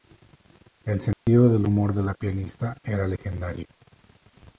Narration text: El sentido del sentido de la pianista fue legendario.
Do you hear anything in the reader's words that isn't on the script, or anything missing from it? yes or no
yes